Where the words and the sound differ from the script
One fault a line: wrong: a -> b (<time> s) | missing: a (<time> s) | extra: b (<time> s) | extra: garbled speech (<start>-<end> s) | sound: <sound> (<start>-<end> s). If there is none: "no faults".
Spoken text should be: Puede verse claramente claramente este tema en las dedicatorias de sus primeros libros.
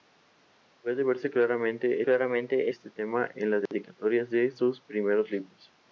sound: dropout (3.7-3.7 s)